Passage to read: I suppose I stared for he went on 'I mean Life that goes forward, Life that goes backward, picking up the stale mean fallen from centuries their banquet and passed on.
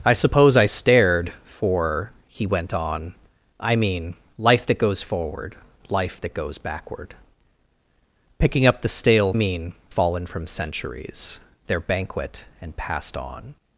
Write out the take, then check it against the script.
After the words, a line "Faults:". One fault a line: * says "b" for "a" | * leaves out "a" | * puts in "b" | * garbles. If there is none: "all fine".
I suppose I stared for he went on 'I mean Life that goes forward, Life that goes backward, picking up the stale mean fallen from centuries their banquet and passed on.
Faults:
all fine